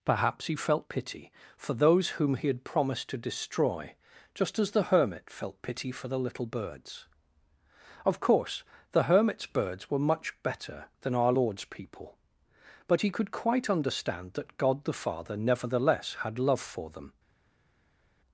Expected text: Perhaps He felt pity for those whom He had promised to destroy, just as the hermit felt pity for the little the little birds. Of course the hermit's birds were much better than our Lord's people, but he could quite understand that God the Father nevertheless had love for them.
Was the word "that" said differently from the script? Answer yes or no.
no